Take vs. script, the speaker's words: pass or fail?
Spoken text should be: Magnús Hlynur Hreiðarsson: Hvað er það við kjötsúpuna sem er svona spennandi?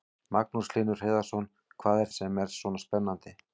fail